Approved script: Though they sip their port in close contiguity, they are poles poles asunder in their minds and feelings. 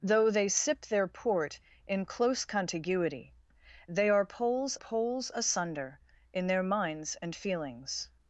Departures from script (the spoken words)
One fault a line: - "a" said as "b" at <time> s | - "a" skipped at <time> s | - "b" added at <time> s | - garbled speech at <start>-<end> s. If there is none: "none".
none